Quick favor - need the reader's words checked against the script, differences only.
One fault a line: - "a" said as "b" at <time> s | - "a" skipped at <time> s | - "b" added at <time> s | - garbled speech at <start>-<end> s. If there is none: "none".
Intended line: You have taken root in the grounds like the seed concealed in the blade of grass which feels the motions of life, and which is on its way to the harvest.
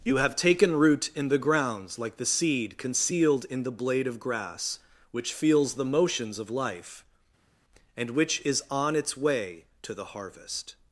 none